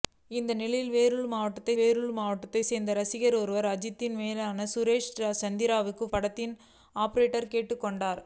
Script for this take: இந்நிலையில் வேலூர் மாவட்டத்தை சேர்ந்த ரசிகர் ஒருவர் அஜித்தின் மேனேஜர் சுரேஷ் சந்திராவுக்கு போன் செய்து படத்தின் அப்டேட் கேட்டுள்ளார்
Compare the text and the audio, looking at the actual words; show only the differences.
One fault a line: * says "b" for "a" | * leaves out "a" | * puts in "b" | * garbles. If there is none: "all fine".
* puts in "வேலூர் மாவட்டத்தை"
* leaves out "போன் செய்து"